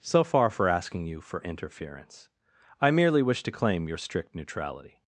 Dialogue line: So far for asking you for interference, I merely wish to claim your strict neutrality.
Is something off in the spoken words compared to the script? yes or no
no